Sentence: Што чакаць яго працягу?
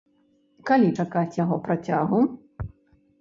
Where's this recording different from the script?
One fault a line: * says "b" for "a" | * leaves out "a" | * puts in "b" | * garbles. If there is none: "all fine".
* says "Калі" for "Што"